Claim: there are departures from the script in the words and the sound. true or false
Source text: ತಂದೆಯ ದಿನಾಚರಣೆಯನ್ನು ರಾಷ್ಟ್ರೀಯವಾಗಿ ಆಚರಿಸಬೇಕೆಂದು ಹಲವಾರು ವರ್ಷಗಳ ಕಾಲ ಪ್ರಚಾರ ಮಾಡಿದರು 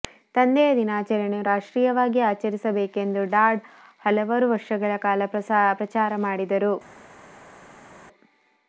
true